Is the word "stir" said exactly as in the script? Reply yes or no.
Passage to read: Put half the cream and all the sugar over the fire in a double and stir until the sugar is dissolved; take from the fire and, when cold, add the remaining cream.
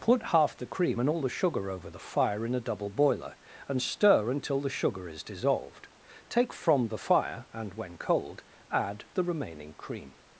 yes